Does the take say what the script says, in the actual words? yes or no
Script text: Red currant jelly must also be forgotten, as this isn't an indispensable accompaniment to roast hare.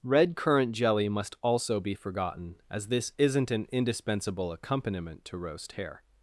yes